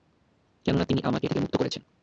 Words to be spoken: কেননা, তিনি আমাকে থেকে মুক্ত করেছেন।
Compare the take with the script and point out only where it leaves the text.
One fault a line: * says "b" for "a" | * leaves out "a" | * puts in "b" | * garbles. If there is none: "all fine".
all fine